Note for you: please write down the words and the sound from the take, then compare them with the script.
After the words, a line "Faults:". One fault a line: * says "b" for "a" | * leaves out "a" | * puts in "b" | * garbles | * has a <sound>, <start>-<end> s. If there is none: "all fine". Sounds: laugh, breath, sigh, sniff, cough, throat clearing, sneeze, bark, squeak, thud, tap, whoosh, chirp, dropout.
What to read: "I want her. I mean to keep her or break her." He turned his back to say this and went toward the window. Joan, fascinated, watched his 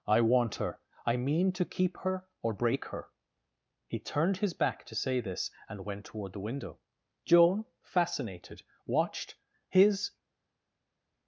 "I want her. I mean to keep her or break her." He turned his back to say this and went toward the window. Joan, fascinated, watched his
Faults:
all fine